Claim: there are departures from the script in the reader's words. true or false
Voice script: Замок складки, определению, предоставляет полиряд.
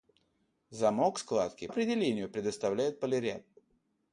false